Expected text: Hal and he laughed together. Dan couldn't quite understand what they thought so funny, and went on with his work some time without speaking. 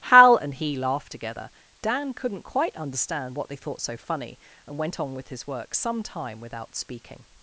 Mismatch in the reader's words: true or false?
false